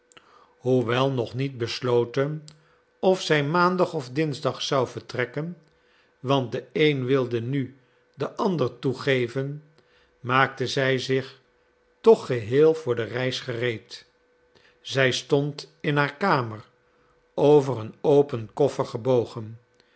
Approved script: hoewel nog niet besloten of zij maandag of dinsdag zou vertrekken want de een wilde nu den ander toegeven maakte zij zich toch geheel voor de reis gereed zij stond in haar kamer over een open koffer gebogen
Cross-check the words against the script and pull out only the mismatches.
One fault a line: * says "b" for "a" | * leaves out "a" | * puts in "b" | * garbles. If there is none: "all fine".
all fine